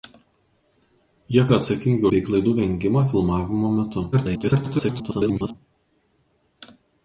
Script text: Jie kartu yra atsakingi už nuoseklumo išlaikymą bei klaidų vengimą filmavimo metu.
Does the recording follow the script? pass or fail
fail